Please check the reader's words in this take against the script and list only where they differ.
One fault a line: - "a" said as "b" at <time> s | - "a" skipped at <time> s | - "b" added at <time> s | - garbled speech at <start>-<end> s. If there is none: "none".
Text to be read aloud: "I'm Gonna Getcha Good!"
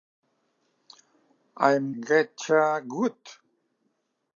- "Gonna" skipped at 1.9 s